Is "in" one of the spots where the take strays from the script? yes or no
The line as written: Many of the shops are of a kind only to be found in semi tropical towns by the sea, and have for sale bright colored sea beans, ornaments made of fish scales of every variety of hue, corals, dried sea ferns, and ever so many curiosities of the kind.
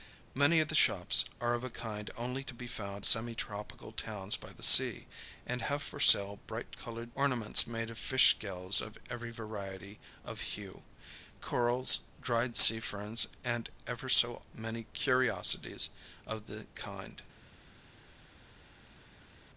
yes